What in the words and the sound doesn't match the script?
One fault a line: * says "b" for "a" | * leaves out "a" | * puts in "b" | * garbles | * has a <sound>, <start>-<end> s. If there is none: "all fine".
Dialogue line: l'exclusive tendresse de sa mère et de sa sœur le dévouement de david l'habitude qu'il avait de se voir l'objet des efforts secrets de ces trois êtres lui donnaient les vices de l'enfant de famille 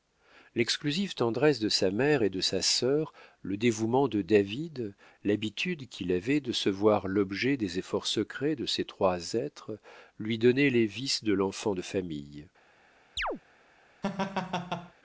* has a chirp, 13.2-13.4 s
* has a laugh, 14.0-14.9 s